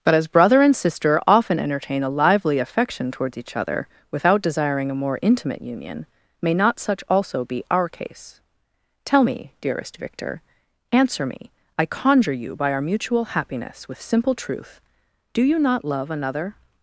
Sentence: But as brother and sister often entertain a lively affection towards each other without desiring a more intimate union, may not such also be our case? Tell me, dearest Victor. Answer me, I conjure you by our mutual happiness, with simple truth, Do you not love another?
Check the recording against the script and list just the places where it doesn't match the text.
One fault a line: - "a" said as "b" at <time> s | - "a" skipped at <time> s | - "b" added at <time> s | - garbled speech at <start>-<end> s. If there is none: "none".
none